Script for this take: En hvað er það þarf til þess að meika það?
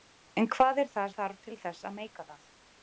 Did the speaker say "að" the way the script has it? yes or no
yes